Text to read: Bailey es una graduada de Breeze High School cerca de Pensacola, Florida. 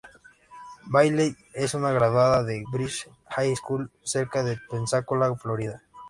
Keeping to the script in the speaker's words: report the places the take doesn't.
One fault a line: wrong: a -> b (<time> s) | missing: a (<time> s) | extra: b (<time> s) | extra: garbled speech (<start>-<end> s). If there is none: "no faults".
no faults